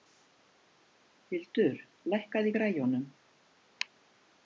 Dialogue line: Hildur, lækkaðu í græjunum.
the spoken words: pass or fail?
pass